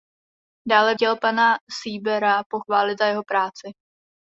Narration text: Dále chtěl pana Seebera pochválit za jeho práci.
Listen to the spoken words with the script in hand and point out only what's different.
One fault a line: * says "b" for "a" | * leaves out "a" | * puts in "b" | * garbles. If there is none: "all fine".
all fine